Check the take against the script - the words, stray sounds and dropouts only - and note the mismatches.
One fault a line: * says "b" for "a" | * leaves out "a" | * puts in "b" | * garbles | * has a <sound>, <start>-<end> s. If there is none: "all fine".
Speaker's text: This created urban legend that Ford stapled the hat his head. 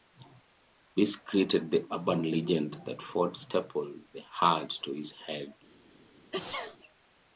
* puts in "the"
* puts in "to"
* has a sneeze, 6.3-6.8 s